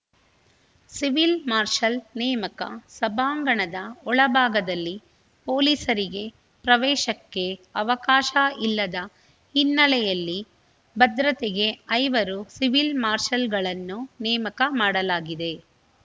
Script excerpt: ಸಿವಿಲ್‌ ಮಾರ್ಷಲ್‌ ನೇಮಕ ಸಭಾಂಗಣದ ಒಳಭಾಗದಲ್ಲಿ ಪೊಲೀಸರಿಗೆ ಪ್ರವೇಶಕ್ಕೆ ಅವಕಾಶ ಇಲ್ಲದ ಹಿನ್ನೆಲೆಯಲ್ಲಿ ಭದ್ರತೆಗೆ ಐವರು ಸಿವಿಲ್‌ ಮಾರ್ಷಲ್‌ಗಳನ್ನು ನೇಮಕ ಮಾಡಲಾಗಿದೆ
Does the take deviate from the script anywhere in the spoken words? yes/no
no